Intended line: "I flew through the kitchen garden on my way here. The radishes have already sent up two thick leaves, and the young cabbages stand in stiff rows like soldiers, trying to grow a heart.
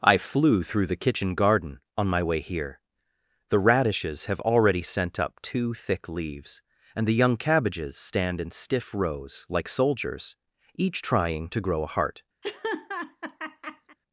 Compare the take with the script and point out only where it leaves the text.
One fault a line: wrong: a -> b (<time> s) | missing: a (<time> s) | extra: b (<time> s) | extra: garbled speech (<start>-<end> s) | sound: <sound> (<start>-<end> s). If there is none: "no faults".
extra: each (10.8 s)
sound: laugh (12.4-14.0 s)